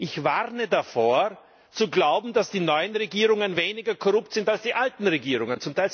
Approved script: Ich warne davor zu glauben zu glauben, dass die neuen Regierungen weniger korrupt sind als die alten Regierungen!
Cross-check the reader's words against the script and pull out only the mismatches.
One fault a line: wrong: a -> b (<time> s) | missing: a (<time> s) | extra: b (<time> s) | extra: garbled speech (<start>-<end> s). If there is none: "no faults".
missing: zu glauben (2.3 s)